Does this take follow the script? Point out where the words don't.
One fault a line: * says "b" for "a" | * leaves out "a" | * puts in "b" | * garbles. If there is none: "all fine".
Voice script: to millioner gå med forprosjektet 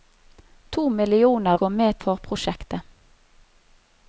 all fine